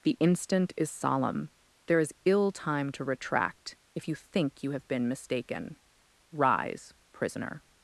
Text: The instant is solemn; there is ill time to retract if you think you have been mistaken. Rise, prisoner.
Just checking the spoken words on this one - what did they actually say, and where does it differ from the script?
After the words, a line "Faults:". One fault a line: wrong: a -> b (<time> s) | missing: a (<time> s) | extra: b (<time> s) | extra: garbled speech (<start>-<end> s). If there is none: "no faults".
The instant is solemn; there is ill time to retract if you think you have been mistaken. Rise, prisoner.
Faults:
no faults